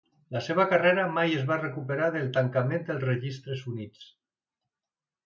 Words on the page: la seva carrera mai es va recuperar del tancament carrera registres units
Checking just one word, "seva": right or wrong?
right